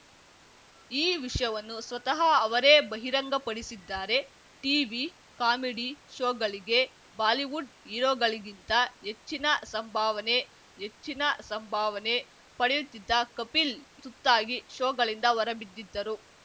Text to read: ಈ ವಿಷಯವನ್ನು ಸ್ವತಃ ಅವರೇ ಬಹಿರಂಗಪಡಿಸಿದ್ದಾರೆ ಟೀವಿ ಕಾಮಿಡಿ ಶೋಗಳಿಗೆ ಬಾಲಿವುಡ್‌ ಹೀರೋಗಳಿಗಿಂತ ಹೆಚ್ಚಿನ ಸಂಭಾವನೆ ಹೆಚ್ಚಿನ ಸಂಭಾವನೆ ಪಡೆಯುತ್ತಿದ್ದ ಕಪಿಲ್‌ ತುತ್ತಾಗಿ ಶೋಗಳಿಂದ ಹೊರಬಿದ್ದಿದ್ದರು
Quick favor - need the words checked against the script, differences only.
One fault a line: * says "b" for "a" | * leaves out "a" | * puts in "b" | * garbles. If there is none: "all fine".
all fine